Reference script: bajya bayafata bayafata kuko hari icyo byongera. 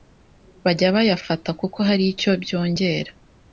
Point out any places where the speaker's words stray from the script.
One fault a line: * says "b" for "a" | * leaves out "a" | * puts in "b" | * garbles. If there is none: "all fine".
* leaves out "bayafata"